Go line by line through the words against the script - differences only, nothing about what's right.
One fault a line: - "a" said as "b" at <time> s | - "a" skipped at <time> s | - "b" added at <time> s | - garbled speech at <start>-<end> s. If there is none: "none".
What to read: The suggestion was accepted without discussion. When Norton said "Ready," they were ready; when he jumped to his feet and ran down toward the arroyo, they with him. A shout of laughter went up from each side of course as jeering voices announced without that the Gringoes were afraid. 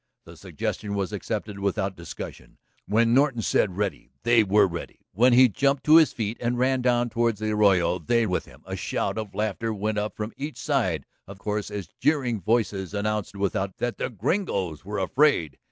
none